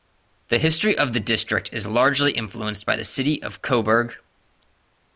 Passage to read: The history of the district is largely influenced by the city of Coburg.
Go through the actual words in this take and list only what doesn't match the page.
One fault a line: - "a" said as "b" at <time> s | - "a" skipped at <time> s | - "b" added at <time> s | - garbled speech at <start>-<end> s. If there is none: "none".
none